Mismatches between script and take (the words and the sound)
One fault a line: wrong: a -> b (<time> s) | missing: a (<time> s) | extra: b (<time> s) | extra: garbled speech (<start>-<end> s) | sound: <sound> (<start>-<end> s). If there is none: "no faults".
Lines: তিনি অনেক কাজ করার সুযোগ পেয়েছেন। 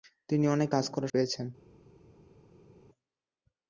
missing: সুযোগ (1.1 s)